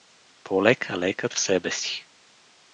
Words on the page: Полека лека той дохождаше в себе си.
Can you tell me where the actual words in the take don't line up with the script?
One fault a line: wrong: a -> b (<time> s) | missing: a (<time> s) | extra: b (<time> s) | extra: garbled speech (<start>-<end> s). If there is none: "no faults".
missing: той дохождаше (1.3 s)